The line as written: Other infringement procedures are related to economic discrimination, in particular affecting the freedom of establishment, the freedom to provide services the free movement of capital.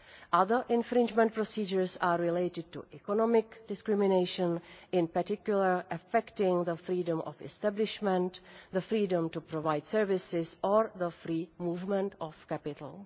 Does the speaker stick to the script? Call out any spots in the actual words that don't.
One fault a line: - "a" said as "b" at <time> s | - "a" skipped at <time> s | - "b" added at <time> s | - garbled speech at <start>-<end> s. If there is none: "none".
- "or" added at 10.6 s